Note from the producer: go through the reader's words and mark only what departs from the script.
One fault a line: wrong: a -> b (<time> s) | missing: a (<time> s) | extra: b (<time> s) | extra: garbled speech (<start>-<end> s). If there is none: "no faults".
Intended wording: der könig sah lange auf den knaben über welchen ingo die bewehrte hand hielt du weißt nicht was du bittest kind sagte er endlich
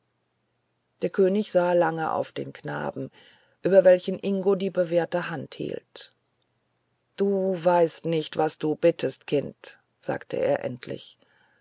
no faults